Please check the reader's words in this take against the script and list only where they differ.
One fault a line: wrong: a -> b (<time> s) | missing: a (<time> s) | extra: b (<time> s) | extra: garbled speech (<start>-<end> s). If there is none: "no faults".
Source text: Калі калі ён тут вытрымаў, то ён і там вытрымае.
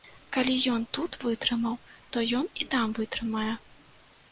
missing: калі (0.5 s)